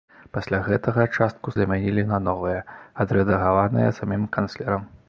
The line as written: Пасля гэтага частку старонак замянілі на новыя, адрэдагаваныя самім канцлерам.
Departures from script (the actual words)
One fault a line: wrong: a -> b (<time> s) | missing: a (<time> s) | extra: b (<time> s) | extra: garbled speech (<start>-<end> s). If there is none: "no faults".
missing: старонак (1.5 s)